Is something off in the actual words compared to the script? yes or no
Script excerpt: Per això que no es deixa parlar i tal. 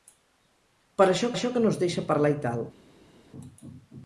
yes